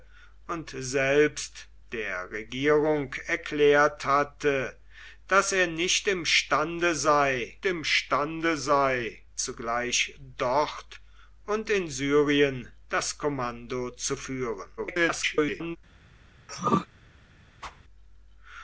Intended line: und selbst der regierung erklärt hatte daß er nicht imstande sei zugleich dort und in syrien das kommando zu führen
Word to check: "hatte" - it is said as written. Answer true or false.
true